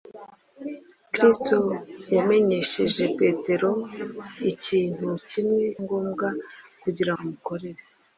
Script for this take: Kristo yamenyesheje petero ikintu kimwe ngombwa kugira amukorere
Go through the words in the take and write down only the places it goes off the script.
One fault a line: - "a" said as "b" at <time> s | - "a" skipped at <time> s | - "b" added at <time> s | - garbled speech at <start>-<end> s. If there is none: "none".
none